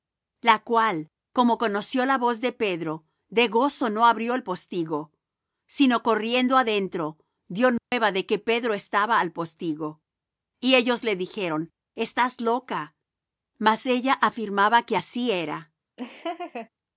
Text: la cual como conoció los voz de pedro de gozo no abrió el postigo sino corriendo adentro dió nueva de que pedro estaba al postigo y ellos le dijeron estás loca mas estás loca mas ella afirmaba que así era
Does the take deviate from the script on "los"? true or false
true